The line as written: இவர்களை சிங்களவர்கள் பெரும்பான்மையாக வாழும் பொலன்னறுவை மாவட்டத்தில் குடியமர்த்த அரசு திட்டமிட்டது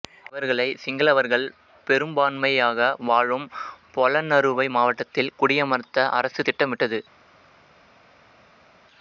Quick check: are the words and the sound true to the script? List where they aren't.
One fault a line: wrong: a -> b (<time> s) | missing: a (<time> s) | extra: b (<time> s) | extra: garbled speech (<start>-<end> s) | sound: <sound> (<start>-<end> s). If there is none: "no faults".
no faults